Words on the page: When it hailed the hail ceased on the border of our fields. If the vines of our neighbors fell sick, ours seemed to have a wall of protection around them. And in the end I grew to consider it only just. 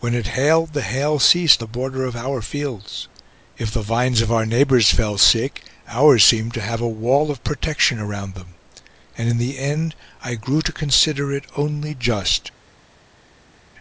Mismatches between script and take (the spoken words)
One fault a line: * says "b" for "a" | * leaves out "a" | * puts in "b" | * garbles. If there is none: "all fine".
* leaves out "on"